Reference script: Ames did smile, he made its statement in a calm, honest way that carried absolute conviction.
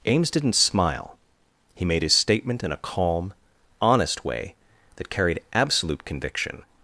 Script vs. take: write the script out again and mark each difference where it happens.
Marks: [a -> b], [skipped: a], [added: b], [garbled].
Ames [did -> didn't] smile, he made [its -> his] statement in a calm, honest way that carried absolute conviction.